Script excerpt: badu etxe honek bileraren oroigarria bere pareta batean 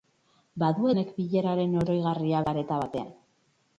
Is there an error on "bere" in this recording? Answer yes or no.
yes